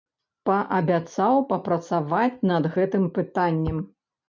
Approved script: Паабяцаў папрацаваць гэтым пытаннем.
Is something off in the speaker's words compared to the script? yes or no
yes